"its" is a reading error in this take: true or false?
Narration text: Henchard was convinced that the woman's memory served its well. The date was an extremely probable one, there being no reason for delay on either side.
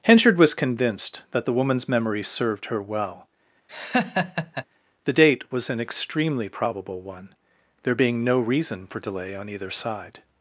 true